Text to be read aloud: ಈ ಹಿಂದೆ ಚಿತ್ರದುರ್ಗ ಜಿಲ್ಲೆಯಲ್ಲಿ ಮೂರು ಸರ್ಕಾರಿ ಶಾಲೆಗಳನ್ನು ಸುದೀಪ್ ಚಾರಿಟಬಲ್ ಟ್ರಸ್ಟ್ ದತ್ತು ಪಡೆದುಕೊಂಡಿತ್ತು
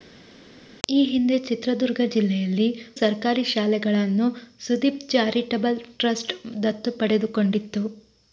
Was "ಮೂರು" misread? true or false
true